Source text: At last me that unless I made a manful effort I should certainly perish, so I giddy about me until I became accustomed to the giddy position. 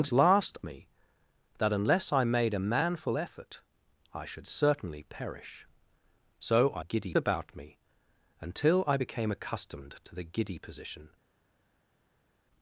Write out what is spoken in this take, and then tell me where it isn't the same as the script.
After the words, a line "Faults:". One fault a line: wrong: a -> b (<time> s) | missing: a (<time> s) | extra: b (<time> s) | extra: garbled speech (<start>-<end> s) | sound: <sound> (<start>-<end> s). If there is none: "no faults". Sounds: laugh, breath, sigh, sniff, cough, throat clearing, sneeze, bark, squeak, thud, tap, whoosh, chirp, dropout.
At last me that unless I made a manful effort I should certainly perish, so I giddy about me until I became accustomed to the giddy position.
Faults:
no faults